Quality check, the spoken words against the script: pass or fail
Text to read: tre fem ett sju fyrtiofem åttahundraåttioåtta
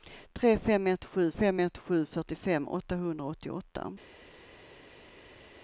fail